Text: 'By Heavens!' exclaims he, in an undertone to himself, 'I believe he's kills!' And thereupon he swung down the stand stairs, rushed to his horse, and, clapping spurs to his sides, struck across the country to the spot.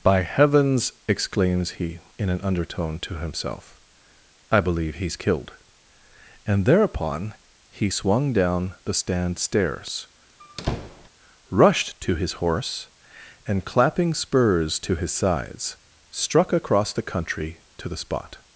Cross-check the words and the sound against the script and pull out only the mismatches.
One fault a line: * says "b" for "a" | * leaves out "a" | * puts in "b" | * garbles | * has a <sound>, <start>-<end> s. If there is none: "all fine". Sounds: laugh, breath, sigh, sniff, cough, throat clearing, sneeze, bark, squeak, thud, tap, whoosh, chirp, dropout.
* says "killed" for "kills"
* has a squeak, 10.4-11.1 s